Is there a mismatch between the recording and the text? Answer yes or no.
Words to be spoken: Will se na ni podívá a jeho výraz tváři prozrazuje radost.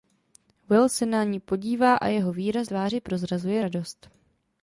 no